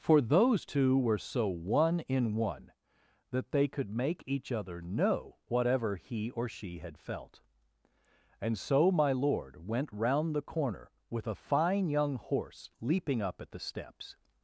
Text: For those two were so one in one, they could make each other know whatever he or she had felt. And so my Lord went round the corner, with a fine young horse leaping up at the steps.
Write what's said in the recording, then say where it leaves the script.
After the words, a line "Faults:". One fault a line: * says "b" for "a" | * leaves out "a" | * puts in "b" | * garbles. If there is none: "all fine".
For those two were so one in one, that they could make each other know whatever he or she had felt. And so my Lord went round the corner, with a fine young horse leaping up at the steps.
Faults:
* puts in "that"